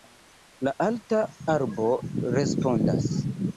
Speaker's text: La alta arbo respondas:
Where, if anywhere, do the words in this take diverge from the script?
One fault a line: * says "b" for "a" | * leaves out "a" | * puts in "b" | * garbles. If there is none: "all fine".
all fine